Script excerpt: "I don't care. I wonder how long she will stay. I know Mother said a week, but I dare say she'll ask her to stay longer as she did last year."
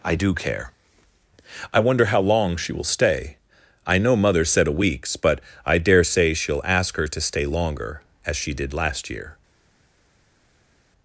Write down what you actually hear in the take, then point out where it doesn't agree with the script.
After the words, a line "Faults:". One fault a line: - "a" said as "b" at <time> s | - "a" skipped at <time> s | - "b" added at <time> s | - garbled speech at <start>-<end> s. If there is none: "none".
"I do care. I wonder how long she will stay. I know Mother said a weeks, but I dare say she'll ask her to stay longer as she did last year."
Faults:
- "don't" said as "do" at 0.1 s
- "week" said as "weeks" at 4.7 s